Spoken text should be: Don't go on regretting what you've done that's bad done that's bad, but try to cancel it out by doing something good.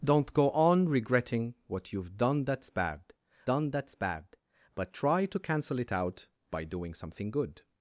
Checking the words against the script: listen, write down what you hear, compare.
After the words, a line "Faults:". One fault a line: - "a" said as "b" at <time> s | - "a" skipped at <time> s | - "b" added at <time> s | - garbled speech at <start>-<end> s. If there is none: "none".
Don't go on regretting what you've done that's bad done that's bad, but try to cancel it out by doing something good.
Faults:
none